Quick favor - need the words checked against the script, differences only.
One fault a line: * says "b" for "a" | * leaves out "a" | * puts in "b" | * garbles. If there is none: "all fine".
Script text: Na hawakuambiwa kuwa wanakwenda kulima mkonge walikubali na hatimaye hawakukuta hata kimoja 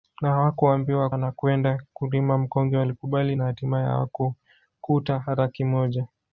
* leaves out "kuwa"